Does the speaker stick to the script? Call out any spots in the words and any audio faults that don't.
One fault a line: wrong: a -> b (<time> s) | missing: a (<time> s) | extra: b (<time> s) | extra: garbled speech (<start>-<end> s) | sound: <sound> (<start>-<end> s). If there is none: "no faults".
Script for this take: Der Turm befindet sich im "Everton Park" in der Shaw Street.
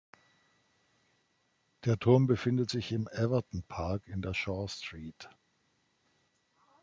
no faults